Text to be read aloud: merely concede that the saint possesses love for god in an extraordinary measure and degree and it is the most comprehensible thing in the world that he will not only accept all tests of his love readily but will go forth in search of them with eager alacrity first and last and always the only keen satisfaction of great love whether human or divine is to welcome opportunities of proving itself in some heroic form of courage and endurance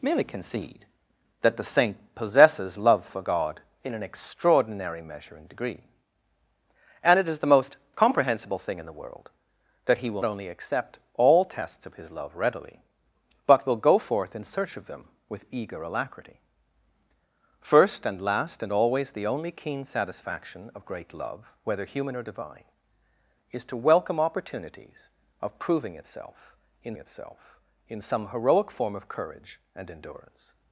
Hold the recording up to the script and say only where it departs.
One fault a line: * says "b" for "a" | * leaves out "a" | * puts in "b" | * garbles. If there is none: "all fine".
* leaves out "not"
* puts in "itself in"